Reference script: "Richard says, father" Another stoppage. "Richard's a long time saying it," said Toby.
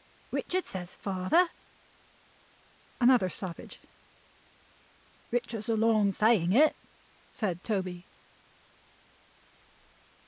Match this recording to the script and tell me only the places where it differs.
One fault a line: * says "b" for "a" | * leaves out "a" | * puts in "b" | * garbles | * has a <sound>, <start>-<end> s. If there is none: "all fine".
* leaves out "time"